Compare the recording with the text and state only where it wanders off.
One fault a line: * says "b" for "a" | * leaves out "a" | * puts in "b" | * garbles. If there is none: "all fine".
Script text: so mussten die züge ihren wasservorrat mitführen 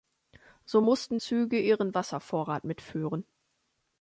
* leaves out "die"